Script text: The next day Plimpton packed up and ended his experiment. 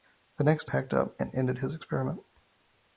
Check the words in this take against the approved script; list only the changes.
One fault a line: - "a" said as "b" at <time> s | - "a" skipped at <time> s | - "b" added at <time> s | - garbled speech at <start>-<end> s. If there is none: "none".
- "day Plimpton" skipped at 0.7 s